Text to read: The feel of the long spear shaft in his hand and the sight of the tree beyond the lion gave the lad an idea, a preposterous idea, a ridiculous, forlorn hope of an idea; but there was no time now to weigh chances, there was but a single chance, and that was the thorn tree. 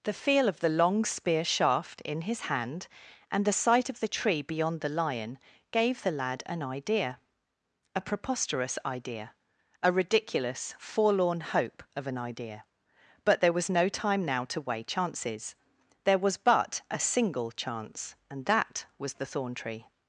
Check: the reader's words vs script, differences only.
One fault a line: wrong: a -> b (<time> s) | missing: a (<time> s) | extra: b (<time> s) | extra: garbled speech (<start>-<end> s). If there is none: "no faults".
no faults